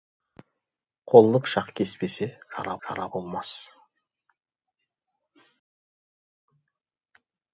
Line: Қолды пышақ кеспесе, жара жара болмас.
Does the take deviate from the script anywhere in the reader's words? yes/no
no